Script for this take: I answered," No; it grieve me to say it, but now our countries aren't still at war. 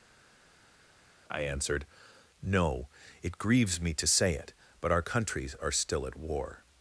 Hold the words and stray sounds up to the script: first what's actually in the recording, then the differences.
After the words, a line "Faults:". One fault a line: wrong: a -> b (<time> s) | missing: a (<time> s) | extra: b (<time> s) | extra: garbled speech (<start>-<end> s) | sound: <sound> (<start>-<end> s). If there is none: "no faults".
I answered," No; it grieves me to say it, but our countries are still at war.
Faults:
wrong: grieve -> grieves (3.4 s)
missing: now (4.9 s)
wrong: aren't -> are (5.6 s)